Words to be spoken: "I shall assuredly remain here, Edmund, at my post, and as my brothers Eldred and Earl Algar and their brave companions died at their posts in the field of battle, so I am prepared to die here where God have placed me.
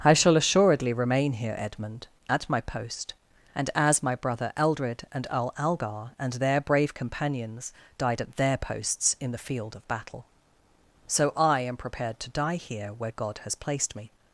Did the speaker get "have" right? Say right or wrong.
wrong